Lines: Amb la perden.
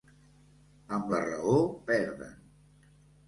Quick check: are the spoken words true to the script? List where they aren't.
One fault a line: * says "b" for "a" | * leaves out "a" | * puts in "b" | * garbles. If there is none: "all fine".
* puts in "raó"